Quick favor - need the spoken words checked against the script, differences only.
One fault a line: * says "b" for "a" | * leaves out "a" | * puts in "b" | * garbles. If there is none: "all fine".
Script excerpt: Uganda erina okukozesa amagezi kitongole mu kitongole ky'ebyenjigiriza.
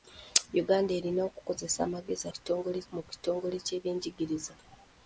all fine